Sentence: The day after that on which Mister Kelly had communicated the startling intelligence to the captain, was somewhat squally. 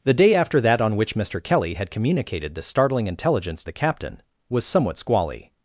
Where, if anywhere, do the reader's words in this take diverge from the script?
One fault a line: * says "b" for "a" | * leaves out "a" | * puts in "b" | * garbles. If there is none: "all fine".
* leaves out "to"